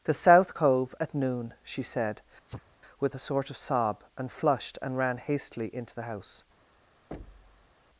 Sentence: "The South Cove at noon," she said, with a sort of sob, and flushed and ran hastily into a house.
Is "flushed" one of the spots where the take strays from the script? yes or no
no